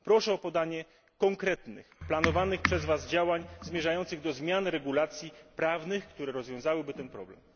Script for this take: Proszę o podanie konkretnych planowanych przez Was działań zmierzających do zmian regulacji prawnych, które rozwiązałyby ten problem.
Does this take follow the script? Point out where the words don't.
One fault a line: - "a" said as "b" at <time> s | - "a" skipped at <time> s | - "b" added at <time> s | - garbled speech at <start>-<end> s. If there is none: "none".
none